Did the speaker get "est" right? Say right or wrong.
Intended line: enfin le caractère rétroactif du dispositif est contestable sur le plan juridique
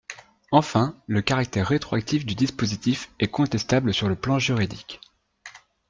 right